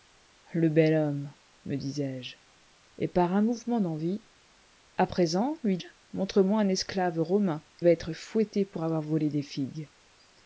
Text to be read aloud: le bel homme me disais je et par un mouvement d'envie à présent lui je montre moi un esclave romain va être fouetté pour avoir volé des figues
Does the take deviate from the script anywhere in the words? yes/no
no